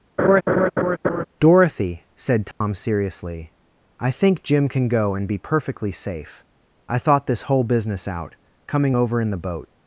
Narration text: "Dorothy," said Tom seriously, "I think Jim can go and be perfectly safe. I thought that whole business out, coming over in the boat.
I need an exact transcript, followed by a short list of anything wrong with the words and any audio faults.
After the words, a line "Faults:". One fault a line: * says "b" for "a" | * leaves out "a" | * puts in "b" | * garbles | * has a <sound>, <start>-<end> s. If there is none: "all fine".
"Dorothy," said Tom seriously, "I think Jim can go and be perfectly safe. I thought this whole business out, coming over in the boat.
Faults:
* has a laugh, 0.2-1.2 s
* has a dropout, 2.5-2.6 s
* says "this" for "that"